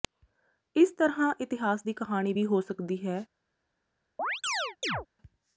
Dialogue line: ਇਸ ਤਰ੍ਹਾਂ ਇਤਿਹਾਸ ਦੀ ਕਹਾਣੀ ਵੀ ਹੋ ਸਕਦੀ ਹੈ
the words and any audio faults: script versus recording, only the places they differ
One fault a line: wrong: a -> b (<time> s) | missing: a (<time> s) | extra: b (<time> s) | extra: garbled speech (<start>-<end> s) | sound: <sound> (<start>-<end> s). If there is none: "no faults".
sound: chirp (4.2-5.1 s)